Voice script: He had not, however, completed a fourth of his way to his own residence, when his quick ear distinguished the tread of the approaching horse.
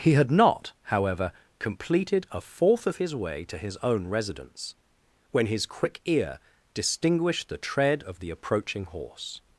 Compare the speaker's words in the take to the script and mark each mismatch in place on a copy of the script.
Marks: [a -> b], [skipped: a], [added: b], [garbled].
He had not, however, completed a fourth of his way to his own residence, when his quick ear distinguished the tread of the approaching horse.